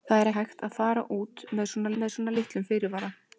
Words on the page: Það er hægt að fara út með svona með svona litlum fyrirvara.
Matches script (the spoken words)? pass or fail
pass